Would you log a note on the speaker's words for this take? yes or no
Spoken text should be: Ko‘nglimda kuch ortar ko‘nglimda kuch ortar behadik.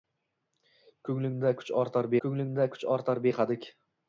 no